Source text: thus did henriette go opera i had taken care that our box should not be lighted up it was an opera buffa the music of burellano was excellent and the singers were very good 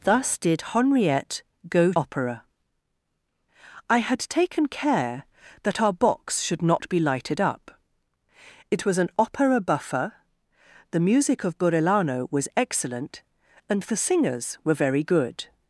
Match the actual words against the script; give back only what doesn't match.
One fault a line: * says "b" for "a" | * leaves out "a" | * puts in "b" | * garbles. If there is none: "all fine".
all fine